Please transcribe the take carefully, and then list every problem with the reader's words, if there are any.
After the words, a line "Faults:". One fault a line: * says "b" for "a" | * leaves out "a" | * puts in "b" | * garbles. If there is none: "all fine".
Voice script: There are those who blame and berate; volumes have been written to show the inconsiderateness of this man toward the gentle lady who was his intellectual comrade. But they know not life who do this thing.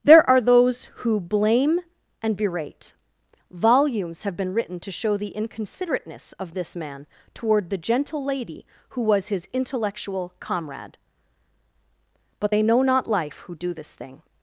There are those who blame and berate; volumes have been written to show the inconsiderateness of this man toward the gentle lady who was his intellectual comrade. But they know not life who do this thing.
Faults:
all fine